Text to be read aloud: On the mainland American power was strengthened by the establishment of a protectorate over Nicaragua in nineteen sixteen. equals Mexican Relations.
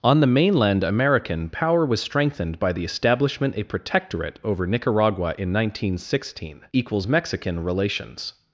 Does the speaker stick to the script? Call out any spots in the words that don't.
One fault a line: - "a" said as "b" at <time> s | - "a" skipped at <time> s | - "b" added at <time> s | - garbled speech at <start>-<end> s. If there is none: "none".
- "of" skipped at 3.5 s